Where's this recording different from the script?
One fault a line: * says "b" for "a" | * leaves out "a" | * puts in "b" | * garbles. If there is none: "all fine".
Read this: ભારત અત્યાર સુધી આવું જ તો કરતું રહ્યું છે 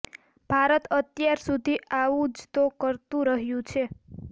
all fine